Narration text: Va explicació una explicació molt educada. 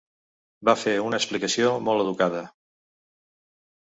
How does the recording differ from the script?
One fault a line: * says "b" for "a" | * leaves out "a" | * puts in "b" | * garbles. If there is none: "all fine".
* says "fer" for "explicació"